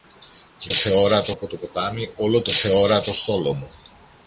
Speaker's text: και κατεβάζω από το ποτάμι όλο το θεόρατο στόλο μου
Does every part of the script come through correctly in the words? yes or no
no